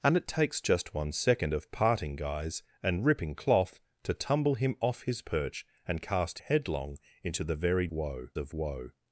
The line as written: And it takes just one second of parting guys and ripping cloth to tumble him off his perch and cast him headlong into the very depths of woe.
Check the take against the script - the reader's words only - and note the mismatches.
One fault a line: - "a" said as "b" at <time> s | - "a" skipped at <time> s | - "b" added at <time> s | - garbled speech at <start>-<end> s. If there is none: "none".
- "him" skipped at 6.4 s
- "depths" said as "woe" at 7.9 s